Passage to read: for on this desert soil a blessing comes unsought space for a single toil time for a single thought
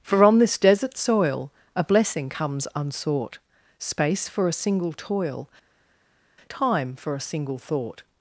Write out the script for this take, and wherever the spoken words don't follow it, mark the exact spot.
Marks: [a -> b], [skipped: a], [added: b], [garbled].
for on this desert soil a blessing comes unsought space for a single toil time for a single thought